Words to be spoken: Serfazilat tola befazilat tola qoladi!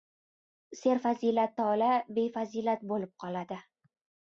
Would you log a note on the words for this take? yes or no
yes